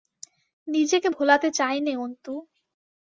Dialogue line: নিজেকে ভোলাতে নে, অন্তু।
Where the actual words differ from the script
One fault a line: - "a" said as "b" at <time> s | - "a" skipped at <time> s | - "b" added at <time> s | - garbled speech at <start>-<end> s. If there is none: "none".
- "চাই" added at 1.5 s